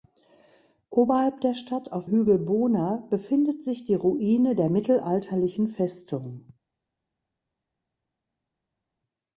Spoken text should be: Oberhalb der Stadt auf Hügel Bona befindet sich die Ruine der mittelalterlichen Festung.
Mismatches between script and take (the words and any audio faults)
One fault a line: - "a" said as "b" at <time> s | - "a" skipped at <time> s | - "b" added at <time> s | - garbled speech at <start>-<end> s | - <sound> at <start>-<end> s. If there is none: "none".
none